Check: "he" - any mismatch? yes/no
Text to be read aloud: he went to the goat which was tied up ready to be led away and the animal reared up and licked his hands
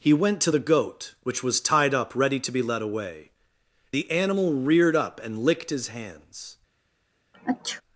no